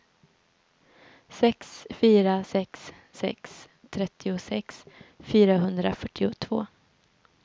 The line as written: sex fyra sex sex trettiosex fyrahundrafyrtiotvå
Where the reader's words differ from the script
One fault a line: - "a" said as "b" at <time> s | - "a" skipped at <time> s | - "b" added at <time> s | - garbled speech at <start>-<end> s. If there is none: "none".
none